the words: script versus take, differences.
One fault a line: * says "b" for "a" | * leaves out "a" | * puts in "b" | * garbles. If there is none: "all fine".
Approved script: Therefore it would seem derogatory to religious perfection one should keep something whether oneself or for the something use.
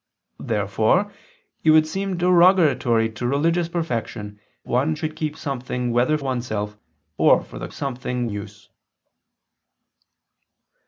all fine